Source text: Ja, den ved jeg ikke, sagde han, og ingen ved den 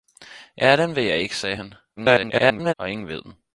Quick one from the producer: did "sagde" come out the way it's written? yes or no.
yes